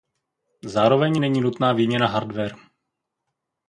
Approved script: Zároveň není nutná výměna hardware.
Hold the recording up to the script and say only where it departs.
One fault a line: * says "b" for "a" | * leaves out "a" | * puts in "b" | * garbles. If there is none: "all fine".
all fine